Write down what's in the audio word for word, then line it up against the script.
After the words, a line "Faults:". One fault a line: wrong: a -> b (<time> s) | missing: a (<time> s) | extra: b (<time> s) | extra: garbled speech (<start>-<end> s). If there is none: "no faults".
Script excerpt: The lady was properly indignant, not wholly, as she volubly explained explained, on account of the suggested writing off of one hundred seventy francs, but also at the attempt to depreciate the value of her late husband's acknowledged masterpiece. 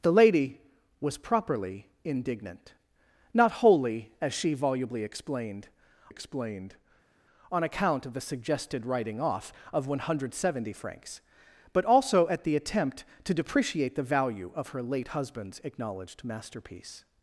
The lady was properly indignant, not wholly, as she volubly explained explained, on account of the suggested writing off of one hundred seventy francs, but also at the attempt to depreciate the value of her late husband's acknowledged masterpiece.
Faults:
no faults